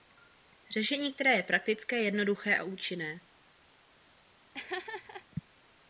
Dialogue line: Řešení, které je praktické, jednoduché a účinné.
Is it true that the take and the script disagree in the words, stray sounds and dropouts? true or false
true